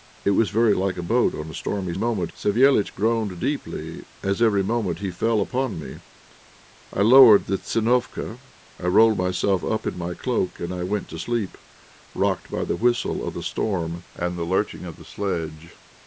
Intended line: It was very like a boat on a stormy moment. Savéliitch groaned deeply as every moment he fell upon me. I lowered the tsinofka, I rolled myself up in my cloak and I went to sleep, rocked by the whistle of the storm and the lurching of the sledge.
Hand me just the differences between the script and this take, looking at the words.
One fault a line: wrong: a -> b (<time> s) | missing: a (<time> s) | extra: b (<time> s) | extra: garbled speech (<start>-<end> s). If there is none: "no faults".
no faults